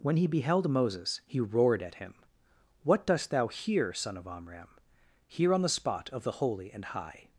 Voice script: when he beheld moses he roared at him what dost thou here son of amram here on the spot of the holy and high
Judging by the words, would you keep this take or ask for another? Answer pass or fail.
pass